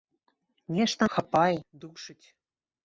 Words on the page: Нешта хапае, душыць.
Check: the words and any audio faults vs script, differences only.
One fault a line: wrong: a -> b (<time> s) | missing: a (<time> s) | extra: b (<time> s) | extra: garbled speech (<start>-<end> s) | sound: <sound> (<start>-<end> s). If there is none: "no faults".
no faults